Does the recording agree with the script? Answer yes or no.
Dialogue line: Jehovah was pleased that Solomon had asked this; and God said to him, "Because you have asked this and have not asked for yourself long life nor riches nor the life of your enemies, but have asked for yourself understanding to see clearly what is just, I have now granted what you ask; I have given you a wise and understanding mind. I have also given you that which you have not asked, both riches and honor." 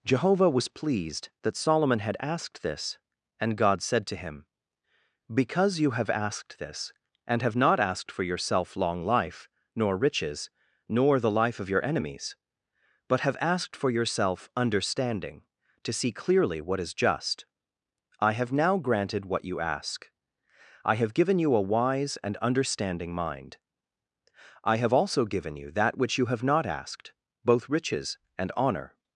yes